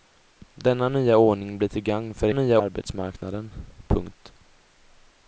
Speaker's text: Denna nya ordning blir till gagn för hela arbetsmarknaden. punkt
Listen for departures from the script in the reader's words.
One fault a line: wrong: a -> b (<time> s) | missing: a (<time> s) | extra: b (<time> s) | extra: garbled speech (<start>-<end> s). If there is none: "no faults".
wrong: hela -> nya (2.3 s)